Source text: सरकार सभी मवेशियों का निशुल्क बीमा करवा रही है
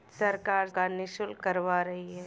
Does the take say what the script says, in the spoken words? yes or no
no